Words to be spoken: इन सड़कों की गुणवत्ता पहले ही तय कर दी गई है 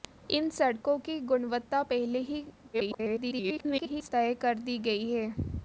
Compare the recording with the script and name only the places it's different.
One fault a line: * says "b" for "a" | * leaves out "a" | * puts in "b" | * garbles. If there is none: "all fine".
* garbles